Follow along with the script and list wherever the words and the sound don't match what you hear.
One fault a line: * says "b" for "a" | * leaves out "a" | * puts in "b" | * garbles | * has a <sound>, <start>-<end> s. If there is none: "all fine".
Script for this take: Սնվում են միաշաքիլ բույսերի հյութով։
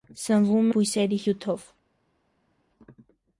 * leaves out "են միաշաքիլ"